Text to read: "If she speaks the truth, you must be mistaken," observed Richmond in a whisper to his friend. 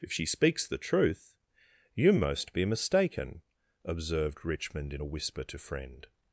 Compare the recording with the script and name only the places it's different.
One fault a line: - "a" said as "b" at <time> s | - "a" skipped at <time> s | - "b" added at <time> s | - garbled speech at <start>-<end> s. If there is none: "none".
- "must" said as "most" at 2.1 s
- "his" skipped at 5.6 s